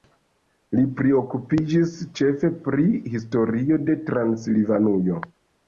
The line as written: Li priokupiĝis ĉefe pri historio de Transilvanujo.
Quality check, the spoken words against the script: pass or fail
pass